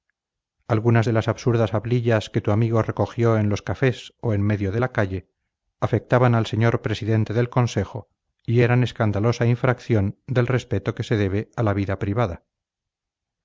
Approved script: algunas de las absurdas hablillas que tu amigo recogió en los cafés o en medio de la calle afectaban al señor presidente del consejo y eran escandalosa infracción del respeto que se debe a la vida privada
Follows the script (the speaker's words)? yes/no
yes